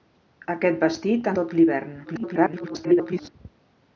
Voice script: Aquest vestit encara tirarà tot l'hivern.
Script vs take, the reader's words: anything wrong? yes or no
yes